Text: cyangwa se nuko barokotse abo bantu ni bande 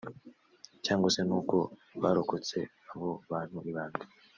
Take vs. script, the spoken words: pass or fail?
pass